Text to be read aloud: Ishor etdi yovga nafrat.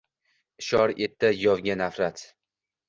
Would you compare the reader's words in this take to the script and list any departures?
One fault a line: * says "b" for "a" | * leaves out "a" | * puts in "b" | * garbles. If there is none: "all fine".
all fine